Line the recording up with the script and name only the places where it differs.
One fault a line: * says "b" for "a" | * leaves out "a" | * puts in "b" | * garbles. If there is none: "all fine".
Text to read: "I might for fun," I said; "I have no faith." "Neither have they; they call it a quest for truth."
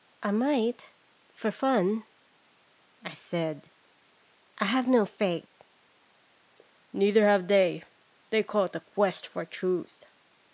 all fine